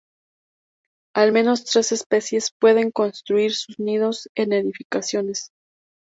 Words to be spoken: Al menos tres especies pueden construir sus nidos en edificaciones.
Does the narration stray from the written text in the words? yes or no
no